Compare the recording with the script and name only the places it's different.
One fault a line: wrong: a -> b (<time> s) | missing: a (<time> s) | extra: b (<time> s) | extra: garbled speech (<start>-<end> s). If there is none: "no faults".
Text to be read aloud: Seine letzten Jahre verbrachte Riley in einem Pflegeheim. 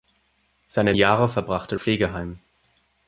missing: letzten (0.9 s)
missing: Riley in einem (1.8 s)